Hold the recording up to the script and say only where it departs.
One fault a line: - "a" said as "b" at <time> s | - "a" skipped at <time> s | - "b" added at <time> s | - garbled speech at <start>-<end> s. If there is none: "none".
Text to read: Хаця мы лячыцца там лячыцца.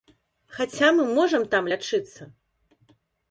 - "лячыцца" said as "можам" at 1.2 s